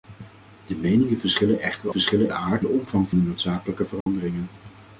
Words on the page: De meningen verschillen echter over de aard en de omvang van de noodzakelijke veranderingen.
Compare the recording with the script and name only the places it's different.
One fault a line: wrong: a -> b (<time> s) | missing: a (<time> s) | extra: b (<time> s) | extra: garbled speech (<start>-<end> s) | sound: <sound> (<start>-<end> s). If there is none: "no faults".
wrong: over -> verschillen (1.9 s)
missing: en (2.7 s)
missing: van (3.1 s)
sound: dropout (4.0-4.1 s)